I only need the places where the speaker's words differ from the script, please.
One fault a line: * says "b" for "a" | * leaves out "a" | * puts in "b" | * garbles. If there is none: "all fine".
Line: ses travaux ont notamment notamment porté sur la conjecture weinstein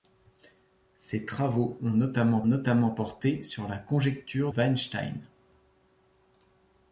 all fine